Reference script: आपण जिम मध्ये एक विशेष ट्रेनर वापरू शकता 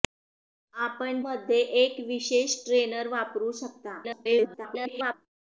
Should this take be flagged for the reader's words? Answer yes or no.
yes